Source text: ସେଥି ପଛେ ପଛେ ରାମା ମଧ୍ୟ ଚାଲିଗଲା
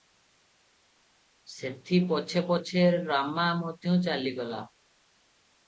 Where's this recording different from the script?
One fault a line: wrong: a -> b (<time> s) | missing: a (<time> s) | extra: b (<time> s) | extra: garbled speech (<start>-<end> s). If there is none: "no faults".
no faults